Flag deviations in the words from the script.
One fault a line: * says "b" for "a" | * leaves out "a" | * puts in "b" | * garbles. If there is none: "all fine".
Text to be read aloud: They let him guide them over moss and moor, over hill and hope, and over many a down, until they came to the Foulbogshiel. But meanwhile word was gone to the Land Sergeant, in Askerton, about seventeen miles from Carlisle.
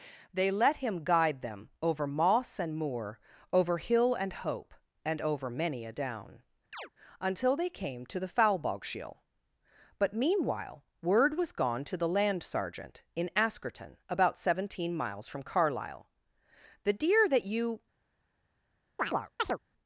* puts in "The deer that you"